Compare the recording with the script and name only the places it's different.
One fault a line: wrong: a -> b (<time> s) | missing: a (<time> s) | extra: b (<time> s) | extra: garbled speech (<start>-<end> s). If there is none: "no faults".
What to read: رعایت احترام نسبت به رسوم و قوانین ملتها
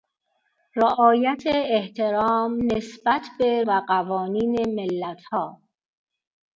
missing: رسوم (3.6 s)